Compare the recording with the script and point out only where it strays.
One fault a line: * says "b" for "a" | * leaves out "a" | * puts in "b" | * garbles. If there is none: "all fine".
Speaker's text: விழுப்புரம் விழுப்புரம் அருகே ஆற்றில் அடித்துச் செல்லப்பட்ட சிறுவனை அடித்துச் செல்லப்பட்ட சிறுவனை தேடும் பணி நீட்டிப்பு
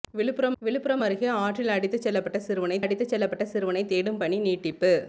all fine